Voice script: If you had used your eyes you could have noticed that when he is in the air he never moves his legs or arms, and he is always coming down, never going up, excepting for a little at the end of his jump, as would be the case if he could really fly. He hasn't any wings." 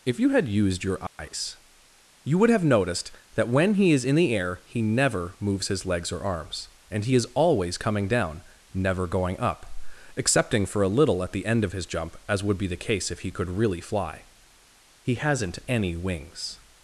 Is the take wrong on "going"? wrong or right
right